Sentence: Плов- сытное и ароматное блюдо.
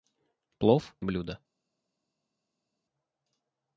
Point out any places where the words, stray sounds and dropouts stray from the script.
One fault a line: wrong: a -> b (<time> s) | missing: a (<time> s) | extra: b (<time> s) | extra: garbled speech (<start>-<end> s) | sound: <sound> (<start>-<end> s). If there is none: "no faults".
missing: сытное и ароматное (0.9 s)